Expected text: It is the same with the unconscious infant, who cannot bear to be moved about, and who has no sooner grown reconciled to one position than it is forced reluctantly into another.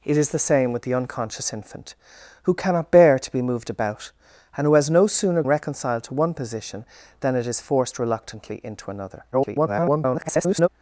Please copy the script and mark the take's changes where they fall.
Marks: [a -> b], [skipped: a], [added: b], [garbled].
It is the same with the unconscious infant, who cannot bear to be moved about, and who has no sooner [skipped: grown] reconciled to one position than it is forced reluctantly into another. [garbled]